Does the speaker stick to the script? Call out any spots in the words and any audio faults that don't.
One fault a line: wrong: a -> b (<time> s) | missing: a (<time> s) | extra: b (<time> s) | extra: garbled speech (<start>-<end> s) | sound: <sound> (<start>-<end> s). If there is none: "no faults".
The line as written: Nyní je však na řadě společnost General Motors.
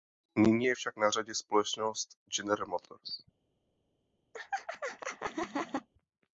sound: laugh (4.3-5.9 s)